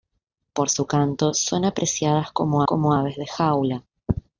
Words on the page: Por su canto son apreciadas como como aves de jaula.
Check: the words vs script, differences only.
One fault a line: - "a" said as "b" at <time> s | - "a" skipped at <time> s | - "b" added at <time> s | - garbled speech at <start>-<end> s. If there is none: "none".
none